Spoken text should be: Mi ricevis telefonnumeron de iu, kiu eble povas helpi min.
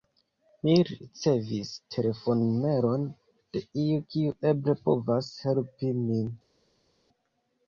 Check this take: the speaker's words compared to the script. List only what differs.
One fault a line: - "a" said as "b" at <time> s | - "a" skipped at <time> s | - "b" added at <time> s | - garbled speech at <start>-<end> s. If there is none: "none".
none